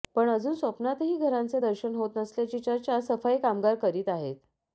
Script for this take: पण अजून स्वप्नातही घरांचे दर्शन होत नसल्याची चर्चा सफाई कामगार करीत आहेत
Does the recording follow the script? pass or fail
pass